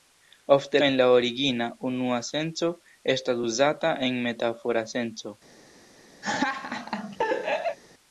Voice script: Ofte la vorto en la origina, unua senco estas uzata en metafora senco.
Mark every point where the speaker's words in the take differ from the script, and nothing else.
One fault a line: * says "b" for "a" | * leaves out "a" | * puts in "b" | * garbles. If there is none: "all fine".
* leaves out "la vorto"